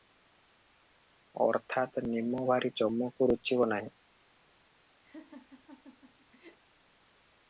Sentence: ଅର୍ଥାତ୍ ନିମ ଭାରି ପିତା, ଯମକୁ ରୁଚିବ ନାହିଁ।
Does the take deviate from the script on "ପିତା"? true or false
true